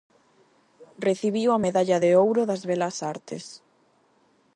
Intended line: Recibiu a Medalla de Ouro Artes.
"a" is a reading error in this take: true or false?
false